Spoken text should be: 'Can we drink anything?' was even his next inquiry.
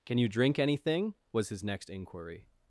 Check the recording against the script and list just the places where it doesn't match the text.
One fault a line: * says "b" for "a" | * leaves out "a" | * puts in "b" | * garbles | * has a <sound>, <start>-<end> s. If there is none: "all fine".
* says "you" for "we"
* leaves out "even"